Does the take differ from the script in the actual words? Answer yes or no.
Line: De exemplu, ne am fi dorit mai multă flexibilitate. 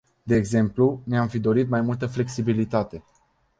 no